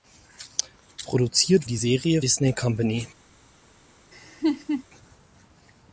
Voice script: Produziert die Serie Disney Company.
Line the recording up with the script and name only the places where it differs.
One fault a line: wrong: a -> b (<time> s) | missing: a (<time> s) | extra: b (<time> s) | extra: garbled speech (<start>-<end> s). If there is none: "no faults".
no faults